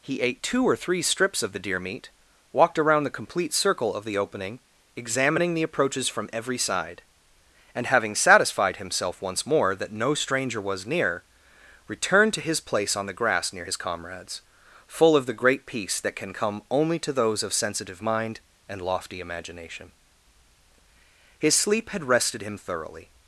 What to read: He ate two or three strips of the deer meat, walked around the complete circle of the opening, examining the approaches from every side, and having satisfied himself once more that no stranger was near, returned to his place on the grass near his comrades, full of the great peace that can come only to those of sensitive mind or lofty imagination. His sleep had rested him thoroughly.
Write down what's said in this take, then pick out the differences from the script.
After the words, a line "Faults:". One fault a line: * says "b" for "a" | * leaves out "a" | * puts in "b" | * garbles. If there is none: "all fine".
He ate two or three strips of the deer meat, walked around the complete circle of the opening, examining the approaches from every side, and having satisfied himself once more that no stranger was near, returned to his place on the grass near his comrades, full of the great peace that can come only to those of sensitive mind and lofty imagination. His sleep had rested him thoroughly.
Faults:
* says "and" for "or"